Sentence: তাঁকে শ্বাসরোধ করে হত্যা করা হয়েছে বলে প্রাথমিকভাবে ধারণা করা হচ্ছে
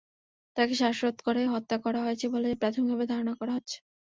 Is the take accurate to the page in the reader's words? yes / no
yes